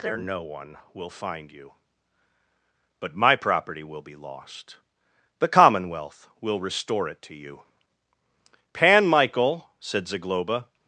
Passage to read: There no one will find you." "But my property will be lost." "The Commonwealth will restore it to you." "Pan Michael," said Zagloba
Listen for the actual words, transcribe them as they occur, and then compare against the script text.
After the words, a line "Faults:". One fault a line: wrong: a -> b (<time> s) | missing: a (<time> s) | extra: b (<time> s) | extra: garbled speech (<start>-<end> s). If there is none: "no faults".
There no one will find you." "But my property will be lost." "The Commonwealth will restore it to you." "Pan Michael," said Zagloba
Faults:
no faults